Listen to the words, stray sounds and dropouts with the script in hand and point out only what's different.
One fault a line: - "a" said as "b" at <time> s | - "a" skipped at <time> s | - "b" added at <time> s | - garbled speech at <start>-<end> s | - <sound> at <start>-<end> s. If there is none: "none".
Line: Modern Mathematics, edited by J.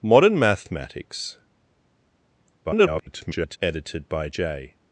- garbled speech at 2.6-3.6 s